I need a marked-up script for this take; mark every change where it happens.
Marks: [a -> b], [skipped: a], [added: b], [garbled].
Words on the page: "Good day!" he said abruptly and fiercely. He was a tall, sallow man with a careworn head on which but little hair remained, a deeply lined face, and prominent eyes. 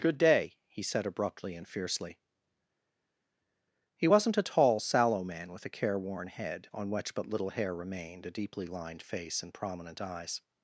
"Good day!" he said abruptly and fiercely. He [was -> wasn't] a tall, sallow man with a careworn head on which but little hair remained, a deeply lined face, and prominent eyes.